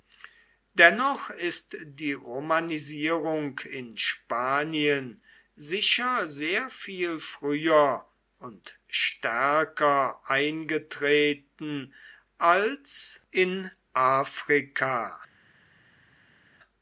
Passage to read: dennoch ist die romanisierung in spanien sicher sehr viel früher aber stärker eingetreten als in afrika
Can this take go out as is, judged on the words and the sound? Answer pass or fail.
fail